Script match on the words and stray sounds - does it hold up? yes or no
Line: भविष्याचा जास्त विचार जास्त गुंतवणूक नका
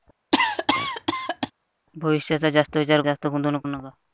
no